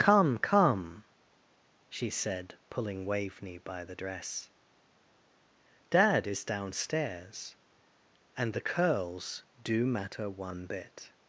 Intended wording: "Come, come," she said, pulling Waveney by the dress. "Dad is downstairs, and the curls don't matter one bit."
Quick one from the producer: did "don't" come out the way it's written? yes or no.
no